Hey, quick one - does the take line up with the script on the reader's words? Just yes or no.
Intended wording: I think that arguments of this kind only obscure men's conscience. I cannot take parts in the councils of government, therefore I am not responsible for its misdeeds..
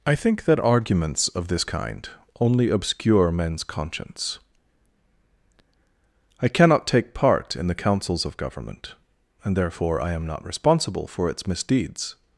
no